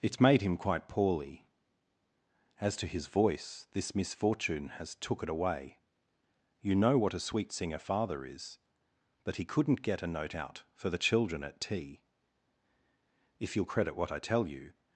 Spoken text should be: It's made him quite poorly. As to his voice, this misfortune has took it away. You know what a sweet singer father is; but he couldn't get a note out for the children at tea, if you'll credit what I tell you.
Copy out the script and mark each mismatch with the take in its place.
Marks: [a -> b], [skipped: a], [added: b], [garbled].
It's made him quite poorly. As to his voice, this misfortune has took it away. You know what a sweet singer father is; but he couldn't get a note out for the children at tea, if you'll credit what I tell you.